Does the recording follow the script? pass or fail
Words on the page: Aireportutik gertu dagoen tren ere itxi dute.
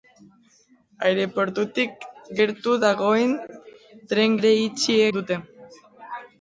pass